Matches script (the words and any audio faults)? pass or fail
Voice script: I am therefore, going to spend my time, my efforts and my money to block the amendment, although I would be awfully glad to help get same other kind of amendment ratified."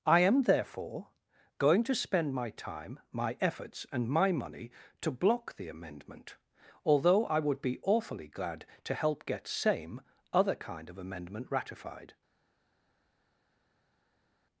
pass